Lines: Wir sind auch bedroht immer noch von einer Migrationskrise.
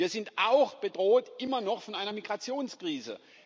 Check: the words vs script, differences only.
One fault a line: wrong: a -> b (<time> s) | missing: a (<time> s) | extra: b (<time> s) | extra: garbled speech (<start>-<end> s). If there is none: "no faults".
no faults